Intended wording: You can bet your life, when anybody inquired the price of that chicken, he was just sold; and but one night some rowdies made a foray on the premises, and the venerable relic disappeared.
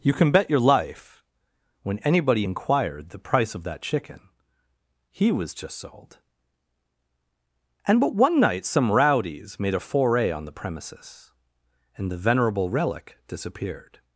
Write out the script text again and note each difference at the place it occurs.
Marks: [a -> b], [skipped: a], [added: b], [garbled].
You can bet your life, when anybody inquired the price of that chicken, he was just sold; and but one night some rowdies made a foray on the premises, and the venerable relic disappeared.